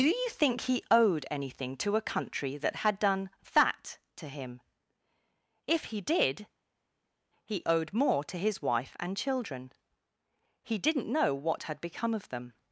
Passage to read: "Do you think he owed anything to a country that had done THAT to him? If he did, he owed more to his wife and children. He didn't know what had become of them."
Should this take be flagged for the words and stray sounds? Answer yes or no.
no